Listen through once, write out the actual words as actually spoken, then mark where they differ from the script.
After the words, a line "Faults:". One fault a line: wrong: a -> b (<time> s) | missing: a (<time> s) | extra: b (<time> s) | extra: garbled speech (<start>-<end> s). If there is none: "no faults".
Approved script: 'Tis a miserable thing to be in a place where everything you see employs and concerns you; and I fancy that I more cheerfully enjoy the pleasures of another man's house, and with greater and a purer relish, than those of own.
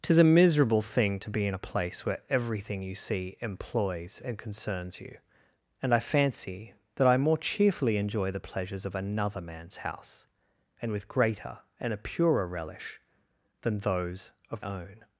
'Tis a miserable thing to be in a place where everything you see employs and concerns you; and I fancy that I more cheerfully enjoy the pleasures of another man's house, and with greater and a purer relish, than those of own.
Faults:
no faults